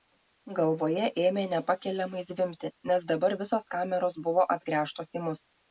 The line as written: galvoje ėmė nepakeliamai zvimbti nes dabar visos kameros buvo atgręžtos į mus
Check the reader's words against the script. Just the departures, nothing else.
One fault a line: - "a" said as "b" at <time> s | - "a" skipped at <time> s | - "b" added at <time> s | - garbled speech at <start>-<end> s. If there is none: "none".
none